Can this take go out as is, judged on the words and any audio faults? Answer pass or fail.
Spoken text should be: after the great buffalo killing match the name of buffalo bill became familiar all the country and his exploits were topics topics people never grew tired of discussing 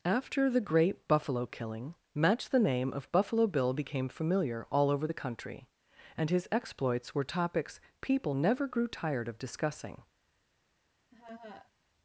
fail